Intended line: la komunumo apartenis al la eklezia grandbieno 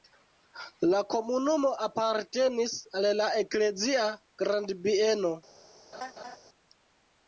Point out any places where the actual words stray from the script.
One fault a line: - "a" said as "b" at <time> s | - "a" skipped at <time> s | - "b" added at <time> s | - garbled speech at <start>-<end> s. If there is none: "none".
none